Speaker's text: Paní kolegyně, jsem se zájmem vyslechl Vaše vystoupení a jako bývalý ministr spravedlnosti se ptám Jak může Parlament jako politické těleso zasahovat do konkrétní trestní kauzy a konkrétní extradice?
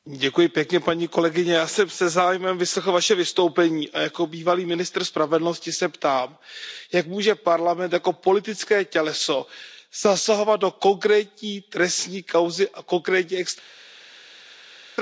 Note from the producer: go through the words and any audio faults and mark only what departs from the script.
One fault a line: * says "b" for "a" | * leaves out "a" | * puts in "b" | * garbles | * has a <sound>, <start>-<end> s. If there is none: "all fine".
* puts in "já"